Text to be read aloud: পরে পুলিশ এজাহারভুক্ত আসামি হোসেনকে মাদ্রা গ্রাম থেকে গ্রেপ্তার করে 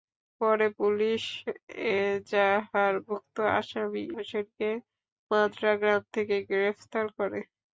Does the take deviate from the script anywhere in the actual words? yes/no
no